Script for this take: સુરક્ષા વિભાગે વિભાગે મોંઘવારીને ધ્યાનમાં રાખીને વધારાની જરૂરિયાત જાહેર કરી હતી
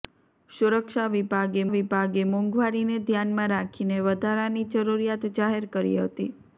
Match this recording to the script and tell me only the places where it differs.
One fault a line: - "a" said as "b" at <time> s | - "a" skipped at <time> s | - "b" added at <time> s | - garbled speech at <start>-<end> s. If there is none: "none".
none